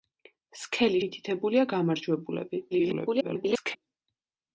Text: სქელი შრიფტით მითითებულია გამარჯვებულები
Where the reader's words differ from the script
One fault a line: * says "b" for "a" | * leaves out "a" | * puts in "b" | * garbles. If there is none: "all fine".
* leaves out "შრიფტით"
* garbles